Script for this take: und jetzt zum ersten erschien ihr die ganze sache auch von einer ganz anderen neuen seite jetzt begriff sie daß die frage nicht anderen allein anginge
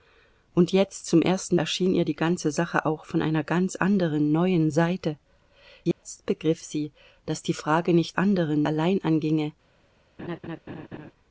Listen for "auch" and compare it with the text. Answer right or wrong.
right